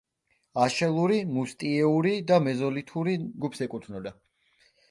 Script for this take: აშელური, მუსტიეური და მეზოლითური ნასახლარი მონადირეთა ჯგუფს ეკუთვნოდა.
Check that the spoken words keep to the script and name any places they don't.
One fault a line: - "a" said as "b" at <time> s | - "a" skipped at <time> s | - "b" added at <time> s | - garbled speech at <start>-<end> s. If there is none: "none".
- "ნასახლარი მონადირეთა" skipped at 3.1 s